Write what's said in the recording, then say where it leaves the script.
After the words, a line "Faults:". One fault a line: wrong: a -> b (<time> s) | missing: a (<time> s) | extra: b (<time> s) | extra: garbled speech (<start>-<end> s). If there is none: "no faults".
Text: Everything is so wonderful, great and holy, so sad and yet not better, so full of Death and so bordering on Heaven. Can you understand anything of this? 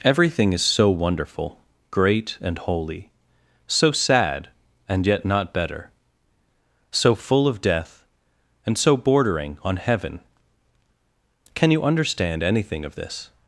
Everything is so wonderful, great and holy, so sad and yet not better, so full of Death and so bordering on Heaven. Can you understand anything of this?
Faults:
no faults